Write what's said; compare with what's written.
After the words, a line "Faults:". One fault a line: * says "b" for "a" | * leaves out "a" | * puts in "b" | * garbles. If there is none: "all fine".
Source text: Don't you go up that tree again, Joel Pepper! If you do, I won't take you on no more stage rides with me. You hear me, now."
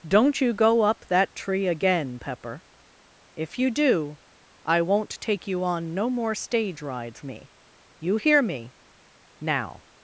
Don't you go up that tree again, Pepper! If you do, I won't take you on no more stage rides me. You hear me, now."
Faults:
* leaves out "Joel"
* leaves out "with"